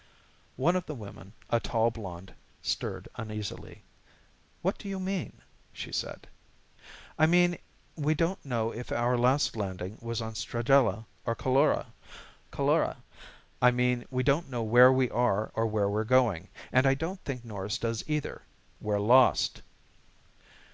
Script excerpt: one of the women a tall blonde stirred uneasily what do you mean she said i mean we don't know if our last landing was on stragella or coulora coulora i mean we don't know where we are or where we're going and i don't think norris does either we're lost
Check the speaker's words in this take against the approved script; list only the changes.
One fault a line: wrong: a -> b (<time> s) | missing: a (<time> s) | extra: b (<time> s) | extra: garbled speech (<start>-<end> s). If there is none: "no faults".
no faults